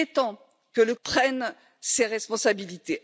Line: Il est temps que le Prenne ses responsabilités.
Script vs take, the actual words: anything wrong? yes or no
no